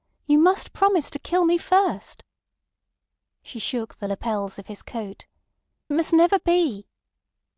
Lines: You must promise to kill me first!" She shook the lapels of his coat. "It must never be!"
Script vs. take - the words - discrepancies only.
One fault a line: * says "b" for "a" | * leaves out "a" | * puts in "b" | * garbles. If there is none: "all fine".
* leaves out "It"